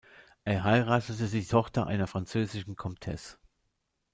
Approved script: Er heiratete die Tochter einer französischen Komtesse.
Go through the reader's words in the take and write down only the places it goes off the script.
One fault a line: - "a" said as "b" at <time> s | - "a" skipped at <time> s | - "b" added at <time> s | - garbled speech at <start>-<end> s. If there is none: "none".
none